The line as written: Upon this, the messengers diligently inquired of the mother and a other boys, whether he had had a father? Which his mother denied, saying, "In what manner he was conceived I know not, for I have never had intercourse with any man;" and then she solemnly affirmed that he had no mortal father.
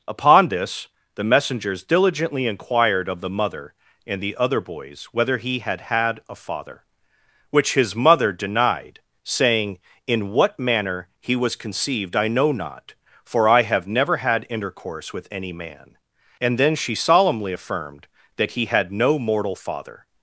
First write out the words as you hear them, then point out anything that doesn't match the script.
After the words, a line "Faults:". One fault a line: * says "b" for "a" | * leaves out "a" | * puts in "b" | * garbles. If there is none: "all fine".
Upon this, the messengers diligently inquired of the mother and the other boys, whether he had had a father? Which his mother denied, saying, "In what manner he was conceived I know not, for I have never had intercourse with any man;" and then she solemnly affirmed that he had no mortal father.
Faults:
* says "the" for "a"